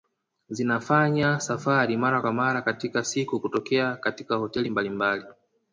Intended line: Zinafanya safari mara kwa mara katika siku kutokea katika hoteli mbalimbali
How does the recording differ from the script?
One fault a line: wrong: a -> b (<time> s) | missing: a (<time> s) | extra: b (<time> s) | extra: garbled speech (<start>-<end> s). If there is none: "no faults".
no faults